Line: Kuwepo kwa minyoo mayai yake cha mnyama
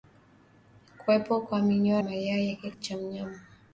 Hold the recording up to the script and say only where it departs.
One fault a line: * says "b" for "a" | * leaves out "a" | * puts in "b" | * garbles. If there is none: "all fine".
all fine